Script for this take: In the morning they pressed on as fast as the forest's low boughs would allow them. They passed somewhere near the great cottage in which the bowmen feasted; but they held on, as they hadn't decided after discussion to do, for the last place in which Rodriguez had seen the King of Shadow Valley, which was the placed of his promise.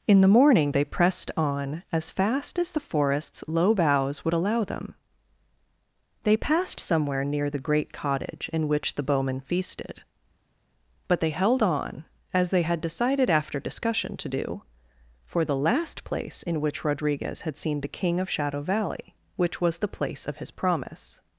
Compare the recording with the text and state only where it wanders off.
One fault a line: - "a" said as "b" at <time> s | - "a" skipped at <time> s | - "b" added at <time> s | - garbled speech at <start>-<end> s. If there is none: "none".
- "hadn't" said as "had" at 12.6 s
- "placed" said as "place" at 19.9 s